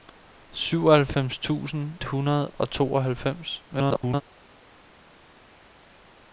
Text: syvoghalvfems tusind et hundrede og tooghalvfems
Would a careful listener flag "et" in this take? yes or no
yes